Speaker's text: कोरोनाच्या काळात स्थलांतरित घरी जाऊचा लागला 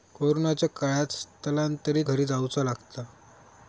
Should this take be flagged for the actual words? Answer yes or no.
no